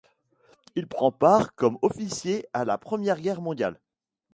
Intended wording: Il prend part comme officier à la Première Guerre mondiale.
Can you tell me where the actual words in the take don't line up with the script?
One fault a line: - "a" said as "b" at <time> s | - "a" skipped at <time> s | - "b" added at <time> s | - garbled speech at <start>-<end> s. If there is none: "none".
none